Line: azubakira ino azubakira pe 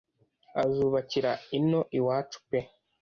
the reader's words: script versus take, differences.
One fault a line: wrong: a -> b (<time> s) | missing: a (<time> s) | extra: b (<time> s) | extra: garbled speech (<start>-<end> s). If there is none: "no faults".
wrong: azubakira -> iwacu (2.0 s)